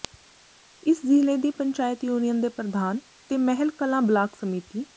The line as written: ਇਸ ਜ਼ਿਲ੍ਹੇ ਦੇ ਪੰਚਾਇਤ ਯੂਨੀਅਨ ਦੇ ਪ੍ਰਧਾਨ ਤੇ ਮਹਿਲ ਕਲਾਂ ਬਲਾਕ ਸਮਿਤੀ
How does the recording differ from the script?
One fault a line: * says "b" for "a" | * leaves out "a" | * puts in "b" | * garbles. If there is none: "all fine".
* says "ਦੀ" for "ਦੇ"